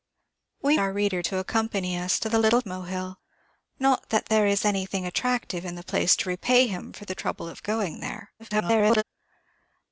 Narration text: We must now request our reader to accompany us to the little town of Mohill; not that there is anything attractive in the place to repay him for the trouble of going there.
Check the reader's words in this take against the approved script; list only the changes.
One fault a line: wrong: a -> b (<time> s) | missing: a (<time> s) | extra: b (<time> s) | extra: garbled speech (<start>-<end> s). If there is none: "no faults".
missing: must now request (0.8 s)
missing: town of (2.6 s)
extra: garbled speech (8.4-9.0 s)